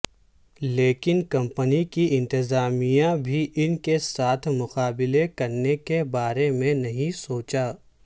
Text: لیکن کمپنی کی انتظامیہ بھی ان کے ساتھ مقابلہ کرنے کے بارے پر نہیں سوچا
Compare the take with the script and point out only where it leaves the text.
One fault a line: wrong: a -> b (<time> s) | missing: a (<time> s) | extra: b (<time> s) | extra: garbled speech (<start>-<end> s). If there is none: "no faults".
wrong: پر -> میں (6.5 s)